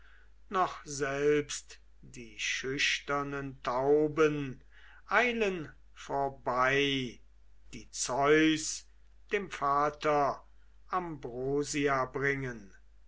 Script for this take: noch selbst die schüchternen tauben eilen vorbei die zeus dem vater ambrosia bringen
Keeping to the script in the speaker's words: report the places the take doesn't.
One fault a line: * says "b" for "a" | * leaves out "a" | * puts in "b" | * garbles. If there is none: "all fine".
all fine